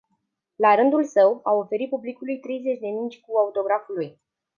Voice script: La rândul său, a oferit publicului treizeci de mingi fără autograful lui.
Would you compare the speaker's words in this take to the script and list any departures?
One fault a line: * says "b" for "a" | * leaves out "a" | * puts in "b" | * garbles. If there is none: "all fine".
* says "cu" for "fără"